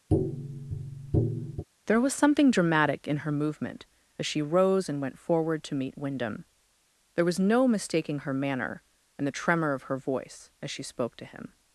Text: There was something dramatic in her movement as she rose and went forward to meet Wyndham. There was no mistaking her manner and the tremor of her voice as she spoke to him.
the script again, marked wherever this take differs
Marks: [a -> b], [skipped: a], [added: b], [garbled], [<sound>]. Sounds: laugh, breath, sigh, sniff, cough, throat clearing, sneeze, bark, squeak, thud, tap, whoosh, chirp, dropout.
[tap] There was something dramatic in her movement as she rose and went forward to meet Wyndham. There was no mistaking her manner and the tremor of her voice as she spoke to him.